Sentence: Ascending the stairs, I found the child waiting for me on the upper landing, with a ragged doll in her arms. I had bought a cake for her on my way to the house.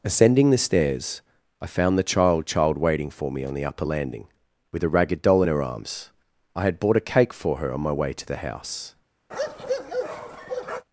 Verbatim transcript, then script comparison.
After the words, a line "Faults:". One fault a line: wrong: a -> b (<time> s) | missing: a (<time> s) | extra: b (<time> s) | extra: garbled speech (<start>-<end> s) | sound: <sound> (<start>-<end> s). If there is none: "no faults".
Ascending the stairs, I found the child child waiting for me on the upper landing, with a ragged doll in her arms. I had bought a cake for her on my way to the house.
Faults:
extra: child (2.5 s)
sound: bark (9.3-10.9 s)